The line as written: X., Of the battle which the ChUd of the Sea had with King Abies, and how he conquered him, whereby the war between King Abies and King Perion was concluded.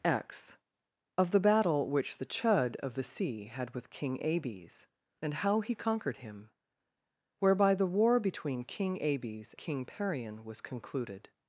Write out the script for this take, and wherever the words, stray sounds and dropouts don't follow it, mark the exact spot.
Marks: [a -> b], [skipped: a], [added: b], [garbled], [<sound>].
X., Of the battle which the ChUd of the Sea had with King Abies, and how he conquered him, whereby the war between King Abies [skipped: and] King Perion was concluded.